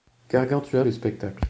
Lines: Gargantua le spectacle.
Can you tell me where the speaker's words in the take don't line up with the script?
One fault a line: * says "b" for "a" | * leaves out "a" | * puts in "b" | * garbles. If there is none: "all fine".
all fine